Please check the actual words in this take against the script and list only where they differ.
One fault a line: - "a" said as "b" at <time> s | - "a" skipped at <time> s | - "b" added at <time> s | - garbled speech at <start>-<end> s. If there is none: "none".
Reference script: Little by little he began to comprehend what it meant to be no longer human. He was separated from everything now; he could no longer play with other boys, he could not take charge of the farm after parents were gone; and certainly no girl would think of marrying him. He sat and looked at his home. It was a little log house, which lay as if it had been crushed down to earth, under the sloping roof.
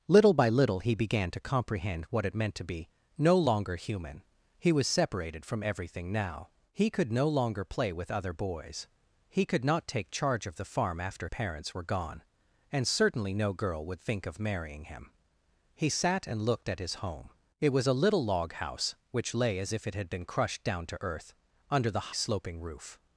none